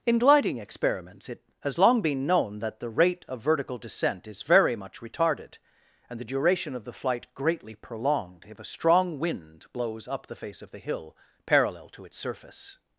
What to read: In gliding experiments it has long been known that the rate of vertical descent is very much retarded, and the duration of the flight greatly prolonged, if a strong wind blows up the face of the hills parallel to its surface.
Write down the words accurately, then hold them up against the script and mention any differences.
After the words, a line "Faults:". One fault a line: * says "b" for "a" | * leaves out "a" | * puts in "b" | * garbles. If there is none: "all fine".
In gliding experiments it has long been known that the rate of vertical descent is very much retarded, and the duration of the flight greatly prolonged, if a strong wind blows up the face of the hill parallel to its surface.
Faults:
* says "hill" for "hills"